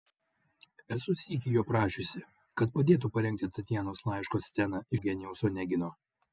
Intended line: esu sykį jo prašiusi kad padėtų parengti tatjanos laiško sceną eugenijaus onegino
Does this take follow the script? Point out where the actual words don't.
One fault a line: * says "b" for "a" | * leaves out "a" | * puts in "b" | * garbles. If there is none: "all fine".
all fine